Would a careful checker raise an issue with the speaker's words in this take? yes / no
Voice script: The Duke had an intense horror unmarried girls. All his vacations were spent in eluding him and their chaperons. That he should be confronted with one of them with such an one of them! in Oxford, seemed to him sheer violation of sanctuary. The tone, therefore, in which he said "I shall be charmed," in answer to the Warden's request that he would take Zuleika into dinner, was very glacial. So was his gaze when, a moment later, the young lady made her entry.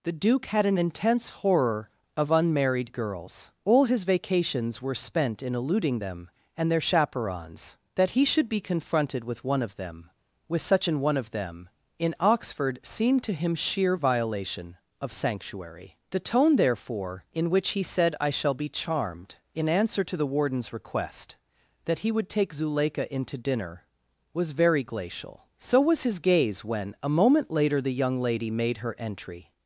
yes